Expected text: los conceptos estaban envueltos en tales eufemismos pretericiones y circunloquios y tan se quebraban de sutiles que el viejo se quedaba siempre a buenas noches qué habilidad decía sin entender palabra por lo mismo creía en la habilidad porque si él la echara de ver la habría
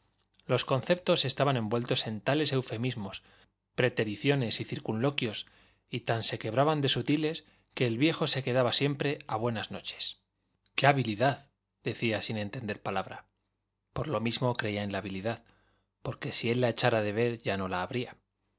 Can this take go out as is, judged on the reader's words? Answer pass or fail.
fail